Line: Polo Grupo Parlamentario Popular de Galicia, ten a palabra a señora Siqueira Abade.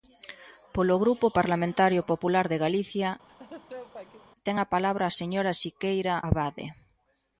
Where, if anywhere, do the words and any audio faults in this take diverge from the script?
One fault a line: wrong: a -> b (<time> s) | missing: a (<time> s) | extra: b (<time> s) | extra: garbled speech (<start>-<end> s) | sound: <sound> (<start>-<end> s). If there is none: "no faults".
sound: laugh (3.3-4.3 s)